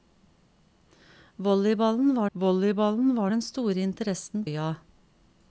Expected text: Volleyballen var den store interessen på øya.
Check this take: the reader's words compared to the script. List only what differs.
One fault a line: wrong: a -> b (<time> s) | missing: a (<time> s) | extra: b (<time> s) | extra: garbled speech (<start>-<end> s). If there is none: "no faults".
extra: volleyballen var (2.3 s)
missing: på (4.5 s)